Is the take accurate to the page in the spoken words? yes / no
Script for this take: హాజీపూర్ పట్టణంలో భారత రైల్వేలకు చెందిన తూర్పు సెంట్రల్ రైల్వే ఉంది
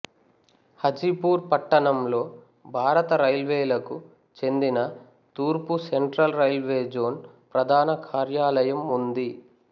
no